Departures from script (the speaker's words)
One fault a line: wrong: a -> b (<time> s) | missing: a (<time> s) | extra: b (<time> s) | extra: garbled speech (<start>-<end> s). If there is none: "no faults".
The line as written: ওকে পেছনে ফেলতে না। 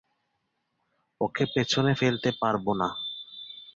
extra: পারবো (2.4 s)